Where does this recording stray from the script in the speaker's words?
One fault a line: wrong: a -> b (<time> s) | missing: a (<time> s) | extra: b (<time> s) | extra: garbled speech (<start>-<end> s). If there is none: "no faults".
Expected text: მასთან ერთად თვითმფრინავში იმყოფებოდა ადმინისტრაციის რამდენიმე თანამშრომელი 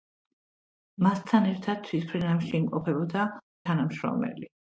missing: ადმინისტრაციის რამდენიმე (3.3 s)